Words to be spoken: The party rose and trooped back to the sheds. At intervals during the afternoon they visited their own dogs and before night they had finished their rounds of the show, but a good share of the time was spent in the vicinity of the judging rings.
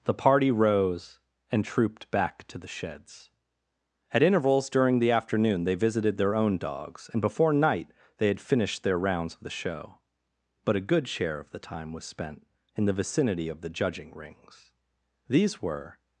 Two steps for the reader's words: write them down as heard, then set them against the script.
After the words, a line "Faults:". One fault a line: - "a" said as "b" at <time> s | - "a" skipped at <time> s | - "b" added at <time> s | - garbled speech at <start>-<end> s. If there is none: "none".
The party rose and trooped back to the sheds. At intervals during the afternoon they visited their own dogs and before night they had finished their rounds of the show, but a good share of the time was spent in the vicinity of the judging rings. These were
Faults:
- "These were" added at 15.3 s